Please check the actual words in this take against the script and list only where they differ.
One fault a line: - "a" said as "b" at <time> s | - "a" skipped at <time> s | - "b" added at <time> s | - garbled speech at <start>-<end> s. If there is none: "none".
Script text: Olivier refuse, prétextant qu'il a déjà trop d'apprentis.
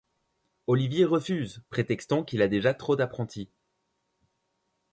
none